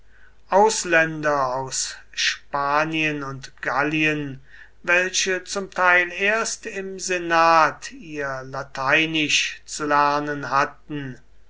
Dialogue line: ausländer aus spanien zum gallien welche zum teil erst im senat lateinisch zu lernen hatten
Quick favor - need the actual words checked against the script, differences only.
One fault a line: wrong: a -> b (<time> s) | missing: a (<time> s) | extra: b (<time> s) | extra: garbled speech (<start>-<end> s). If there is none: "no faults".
wrong: zum -> und (3.2 s)
extra: ihr (7.9 s)